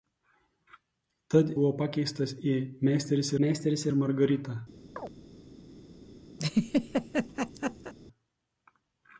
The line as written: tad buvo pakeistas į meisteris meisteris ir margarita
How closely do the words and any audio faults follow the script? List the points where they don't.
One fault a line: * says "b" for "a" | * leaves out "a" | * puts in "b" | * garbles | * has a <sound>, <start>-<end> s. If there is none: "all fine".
* has a chirp, 5.0-5.1 s
* has a laugh, 6.4-7.9 s